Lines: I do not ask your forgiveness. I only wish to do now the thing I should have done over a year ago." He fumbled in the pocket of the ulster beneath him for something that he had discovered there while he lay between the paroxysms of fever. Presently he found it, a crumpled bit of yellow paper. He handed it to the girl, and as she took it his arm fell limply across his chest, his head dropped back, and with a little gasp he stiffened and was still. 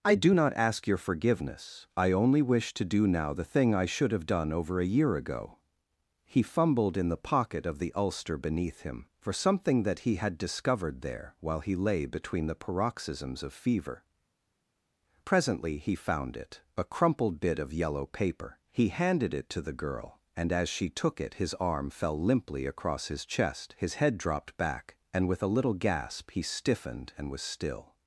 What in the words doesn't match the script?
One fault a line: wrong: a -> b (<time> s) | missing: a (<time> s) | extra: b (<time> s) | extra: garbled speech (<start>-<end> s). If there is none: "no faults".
no faults